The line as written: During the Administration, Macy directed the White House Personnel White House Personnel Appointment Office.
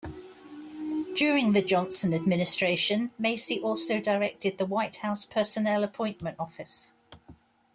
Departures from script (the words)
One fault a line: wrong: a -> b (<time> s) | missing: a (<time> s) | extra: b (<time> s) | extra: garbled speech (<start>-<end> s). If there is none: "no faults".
extra: Johnson (1.6 s)
extra: also (3.6 s)
missing: White House Personnel (5.8 s)